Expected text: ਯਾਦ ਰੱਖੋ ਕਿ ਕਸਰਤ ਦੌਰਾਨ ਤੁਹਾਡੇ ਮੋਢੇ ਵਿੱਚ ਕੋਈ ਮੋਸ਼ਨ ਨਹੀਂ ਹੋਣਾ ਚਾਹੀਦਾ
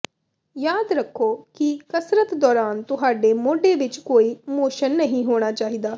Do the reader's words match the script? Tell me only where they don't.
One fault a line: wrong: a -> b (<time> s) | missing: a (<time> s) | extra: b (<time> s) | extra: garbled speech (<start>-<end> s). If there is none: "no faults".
no faults